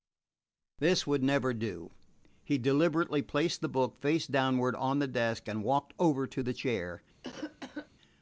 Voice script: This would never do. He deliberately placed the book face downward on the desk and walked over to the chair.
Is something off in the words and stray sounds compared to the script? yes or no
yes